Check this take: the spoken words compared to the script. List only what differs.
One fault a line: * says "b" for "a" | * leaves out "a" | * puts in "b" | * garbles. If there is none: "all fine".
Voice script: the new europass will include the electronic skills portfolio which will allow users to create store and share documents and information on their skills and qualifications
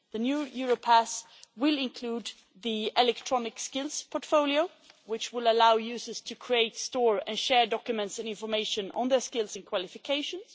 all fine